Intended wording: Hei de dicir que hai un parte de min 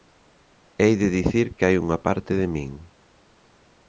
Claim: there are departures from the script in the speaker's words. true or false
true